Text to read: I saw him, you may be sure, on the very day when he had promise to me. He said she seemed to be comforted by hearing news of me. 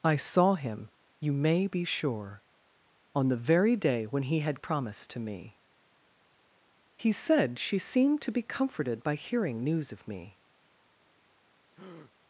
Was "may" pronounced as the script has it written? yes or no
yes